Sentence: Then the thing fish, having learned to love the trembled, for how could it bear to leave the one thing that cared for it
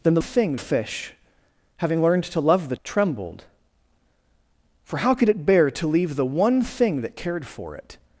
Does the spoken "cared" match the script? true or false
true